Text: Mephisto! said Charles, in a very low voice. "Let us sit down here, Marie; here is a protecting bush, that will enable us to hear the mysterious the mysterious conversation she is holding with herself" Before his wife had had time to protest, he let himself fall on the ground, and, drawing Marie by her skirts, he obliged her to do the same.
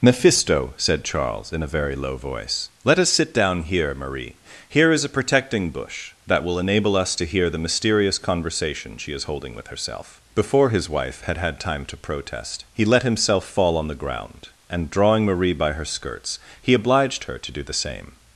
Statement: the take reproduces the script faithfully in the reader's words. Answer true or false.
false